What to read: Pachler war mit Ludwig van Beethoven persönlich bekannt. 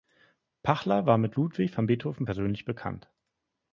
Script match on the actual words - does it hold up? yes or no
yes